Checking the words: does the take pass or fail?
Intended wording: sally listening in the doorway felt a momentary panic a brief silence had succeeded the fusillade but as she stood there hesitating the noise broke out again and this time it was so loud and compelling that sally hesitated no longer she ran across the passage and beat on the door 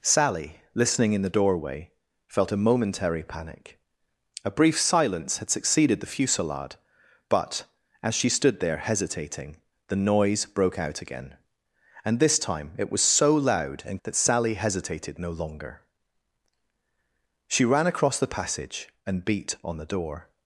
fail